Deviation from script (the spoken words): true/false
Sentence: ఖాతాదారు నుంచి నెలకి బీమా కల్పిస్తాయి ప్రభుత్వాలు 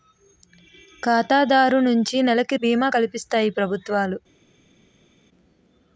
false